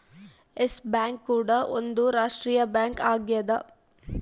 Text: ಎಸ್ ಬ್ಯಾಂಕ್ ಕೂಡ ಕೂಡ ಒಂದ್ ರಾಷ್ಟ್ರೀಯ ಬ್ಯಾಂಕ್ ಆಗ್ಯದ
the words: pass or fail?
fail